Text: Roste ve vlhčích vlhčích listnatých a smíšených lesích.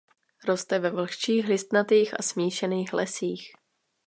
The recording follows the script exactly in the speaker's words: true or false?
false